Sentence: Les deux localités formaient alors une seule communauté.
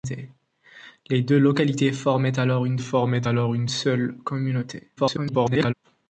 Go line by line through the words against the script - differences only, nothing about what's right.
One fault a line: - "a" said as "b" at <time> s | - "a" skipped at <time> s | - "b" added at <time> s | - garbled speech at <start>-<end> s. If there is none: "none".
- "formaient alors une" added at 2.8 s
- garbled speech at 5.0-5.7 s